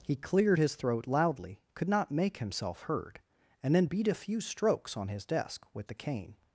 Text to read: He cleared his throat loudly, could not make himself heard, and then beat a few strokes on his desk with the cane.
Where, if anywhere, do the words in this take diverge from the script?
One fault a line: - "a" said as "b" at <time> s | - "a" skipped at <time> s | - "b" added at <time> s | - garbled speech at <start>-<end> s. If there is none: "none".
none